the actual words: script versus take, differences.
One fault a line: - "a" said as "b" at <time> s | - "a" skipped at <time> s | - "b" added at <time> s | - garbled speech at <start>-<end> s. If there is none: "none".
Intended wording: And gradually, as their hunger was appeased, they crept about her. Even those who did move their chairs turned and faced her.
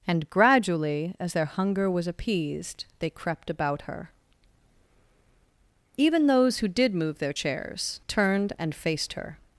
none